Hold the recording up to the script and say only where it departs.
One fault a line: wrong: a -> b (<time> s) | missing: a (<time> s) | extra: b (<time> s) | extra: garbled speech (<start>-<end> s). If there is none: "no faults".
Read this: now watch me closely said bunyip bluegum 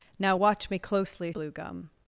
missing: said bunyip (1.3 s)